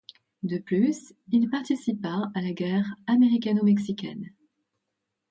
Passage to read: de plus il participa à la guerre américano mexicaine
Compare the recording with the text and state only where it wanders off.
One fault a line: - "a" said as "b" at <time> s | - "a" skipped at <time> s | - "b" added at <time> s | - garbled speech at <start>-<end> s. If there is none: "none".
none